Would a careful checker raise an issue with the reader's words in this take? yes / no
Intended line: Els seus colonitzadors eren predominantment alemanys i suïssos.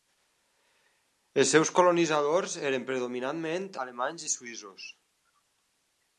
no